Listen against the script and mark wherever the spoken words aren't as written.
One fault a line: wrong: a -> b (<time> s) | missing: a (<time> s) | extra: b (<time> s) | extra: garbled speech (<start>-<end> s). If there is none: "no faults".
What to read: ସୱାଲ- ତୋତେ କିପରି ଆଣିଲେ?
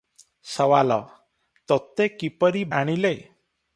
no faults